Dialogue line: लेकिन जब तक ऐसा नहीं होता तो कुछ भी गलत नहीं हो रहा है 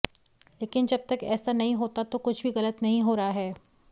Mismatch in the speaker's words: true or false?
false